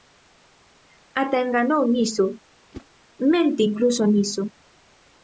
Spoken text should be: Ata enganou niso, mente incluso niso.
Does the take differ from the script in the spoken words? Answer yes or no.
no